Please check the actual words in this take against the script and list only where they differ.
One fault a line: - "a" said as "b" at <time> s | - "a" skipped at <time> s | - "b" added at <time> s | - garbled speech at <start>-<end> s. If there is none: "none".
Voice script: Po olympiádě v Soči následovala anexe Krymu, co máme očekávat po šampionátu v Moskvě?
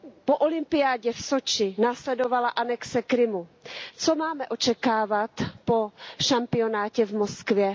none